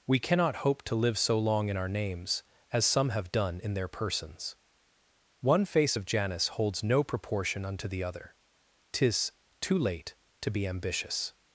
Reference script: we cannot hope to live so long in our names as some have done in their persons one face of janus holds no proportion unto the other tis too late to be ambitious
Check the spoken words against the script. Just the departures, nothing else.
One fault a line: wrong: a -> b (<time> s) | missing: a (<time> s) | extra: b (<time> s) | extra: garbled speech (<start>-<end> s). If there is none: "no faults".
no faults